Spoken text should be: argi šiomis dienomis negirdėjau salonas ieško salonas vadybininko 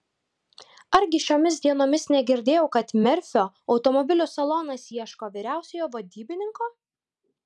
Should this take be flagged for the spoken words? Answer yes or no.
yes